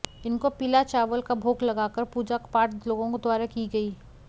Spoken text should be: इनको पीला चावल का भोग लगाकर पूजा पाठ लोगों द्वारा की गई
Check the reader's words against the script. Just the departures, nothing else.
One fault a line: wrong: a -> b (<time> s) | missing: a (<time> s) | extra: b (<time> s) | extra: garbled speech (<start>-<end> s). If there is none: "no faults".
no faults